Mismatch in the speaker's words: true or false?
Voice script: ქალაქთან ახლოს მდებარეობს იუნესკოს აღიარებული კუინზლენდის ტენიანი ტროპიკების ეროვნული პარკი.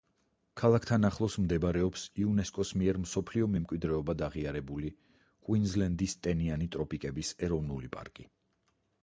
true